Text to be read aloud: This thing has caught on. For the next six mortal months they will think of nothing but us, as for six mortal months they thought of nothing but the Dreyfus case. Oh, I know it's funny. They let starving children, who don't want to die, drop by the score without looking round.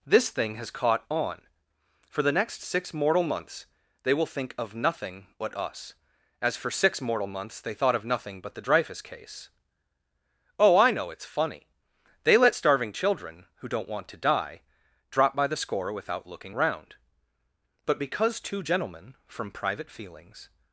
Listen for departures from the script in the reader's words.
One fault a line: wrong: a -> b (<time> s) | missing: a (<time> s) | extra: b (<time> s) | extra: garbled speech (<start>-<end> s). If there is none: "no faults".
extra: But because two gentlemen from private feelings (17.9 s)